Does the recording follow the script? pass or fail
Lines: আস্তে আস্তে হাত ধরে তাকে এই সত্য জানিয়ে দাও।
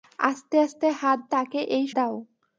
fail